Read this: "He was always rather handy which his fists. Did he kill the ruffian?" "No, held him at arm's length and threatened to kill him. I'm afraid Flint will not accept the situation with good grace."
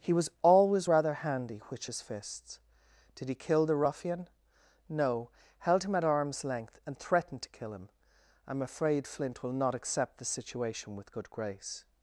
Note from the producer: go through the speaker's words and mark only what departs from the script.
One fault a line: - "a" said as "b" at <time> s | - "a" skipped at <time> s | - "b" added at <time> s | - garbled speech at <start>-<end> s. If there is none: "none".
none